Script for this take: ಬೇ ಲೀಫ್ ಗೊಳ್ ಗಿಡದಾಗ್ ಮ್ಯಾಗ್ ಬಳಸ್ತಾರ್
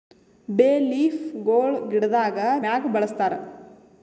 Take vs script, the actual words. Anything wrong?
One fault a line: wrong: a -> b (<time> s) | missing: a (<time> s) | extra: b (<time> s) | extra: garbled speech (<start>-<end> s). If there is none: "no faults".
no faults